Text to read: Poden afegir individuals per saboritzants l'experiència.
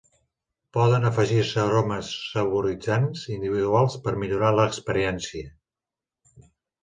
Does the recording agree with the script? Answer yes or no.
no